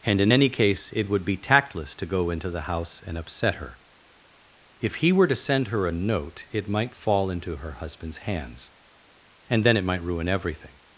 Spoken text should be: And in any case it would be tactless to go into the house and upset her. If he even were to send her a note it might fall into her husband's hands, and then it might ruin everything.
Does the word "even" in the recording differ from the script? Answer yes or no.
yes